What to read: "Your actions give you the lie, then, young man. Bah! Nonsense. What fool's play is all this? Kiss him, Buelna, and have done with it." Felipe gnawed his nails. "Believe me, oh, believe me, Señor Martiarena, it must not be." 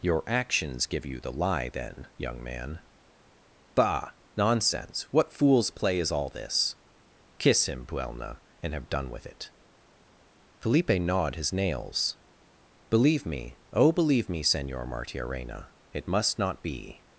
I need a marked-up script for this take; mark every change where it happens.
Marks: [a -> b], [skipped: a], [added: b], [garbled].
"Your actions give you the lie, then, young man. Bah! Nonsense. What fool's play is all this? Kiss him, Buelna, and have done with it." Felipe gnawed his nails. "Believe me, oh, believe me, Señor Martiarena, it must not be."